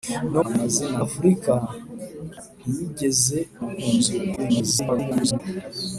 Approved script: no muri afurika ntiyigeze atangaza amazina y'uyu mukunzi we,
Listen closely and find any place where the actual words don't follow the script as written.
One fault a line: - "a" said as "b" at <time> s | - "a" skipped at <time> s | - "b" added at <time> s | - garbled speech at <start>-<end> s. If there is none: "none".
- "muri" said as "amazina" at 0.5 s
- "atangaza amazina y'uyu" skipped at 3.4 s
- garbled speech at 4.4-5.4 s